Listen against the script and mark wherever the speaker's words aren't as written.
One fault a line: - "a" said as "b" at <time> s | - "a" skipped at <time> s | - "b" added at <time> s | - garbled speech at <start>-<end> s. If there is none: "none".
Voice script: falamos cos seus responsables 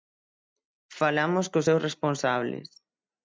none